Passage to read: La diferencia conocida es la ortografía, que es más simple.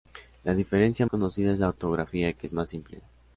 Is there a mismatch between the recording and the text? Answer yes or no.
no